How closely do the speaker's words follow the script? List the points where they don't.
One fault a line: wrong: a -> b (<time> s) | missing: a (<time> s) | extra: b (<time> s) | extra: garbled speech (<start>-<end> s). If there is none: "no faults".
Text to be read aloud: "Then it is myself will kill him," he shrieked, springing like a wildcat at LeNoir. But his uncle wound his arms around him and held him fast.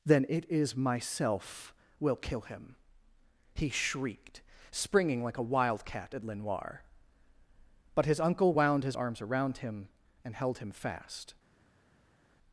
no faults